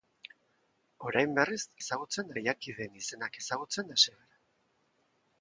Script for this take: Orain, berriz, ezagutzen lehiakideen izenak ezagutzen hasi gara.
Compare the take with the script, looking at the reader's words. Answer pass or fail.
pass